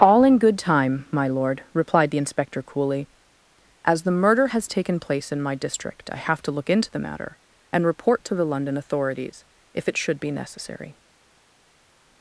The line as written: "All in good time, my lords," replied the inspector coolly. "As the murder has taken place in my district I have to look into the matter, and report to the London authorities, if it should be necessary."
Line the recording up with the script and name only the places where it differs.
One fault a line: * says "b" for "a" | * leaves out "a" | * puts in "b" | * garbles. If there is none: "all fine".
* says "lord" for "lords"